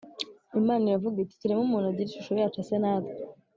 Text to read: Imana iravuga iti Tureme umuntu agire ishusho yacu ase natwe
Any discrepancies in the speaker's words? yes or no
no